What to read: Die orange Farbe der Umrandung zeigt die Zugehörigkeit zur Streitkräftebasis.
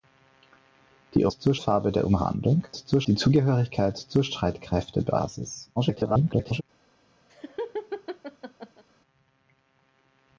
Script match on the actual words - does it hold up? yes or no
no